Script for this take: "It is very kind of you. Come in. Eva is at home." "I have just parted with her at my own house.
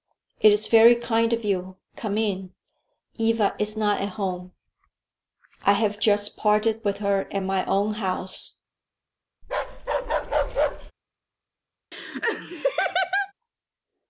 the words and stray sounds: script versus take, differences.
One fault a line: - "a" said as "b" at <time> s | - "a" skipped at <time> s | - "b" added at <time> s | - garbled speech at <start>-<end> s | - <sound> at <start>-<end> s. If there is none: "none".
- "not" added at 3.8 s
- bark at 9.4-10.9 s
- laugh at 11.9-13.3 s